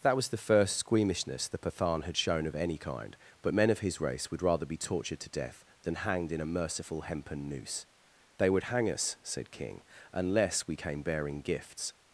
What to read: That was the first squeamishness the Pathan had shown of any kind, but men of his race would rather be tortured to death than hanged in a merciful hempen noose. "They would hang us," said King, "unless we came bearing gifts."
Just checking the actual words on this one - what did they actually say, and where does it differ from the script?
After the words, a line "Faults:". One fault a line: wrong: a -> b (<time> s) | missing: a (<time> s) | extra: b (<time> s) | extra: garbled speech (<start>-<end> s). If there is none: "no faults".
That was the first squeamishness the Pathan had shown of any kind, but men of his race would rather be tortured to death than hanged in a merciful hempen noose. "They would hang us," said King, "unless we came bearing gifts."
Faults:
no faults